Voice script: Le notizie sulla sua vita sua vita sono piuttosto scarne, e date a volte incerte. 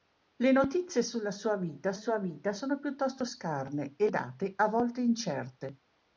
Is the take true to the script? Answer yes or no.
yes